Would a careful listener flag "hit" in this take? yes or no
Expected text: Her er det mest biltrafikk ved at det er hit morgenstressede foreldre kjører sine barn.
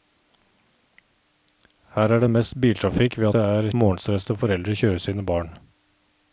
yes